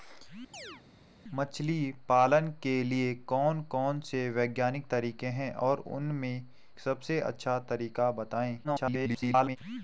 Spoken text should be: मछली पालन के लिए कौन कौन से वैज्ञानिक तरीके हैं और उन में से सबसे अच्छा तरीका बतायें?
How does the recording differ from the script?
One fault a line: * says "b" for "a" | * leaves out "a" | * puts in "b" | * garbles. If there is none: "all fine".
* leaves out "से"
* garbles